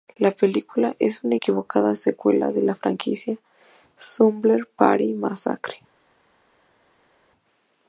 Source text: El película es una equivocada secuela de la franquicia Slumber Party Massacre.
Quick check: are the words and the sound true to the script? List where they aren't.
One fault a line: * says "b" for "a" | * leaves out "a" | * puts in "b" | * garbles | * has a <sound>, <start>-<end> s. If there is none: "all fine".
* says "La" for "El"